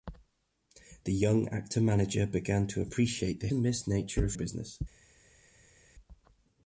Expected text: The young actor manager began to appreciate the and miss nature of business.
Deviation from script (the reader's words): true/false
false